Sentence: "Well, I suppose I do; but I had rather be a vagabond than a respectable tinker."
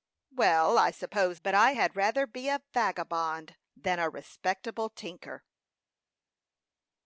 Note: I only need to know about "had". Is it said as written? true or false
true